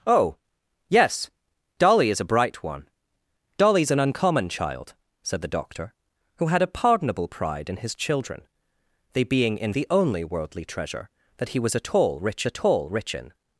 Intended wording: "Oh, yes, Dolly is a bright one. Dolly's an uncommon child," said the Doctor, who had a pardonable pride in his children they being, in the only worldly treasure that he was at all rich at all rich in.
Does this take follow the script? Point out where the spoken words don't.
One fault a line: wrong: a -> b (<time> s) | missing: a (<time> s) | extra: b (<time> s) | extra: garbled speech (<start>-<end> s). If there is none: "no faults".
no faults